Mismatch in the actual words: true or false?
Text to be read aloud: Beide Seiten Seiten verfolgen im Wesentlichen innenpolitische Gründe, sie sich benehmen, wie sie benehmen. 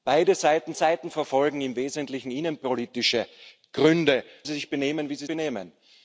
false